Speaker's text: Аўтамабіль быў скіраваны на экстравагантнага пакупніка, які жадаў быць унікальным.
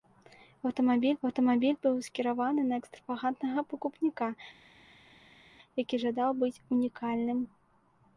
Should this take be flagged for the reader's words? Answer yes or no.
yes